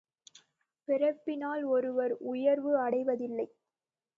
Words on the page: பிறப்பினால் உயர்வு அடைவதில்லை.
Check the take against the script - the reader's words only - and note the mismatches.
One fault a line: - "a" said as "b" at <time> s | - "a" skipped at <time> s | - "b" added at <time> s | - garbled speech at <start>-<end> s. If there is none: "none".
- "ஒருவர்" added at 1.6 s